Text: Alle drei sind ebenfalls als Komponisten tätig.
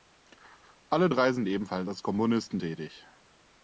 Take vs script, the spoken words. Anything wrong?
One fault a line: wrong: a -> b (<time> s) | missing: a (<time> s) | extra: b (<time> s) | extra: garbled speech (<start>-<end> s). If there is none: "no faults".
no faults